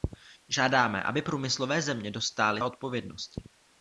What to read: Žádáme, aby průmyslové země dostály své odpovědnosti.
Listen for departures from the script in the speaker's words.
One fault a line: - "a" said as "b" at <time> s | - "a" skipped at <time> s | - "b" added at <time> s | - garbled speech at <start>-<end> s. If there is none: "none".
- "své" skipped at 2.6 s